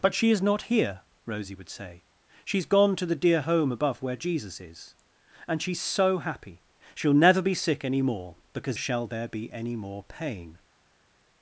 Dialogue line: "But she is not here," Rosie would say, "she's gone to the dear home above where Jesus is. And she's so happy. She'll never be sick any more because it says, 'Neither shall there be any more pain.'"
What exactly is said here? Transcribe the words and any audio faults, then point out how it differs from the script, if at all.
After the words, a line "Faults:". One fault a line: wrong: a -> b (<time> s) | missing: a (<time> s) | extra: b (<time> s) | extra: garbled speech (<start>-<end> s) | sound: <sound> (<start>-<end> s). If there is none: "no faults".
"But she is not here," Rosie would say, "she's gone to the dear home above where Jesus is. And she's so happy. She'll never be sick any more because shall there be any more pain.'"
Faults:
missing: it says Neither (8.8 s)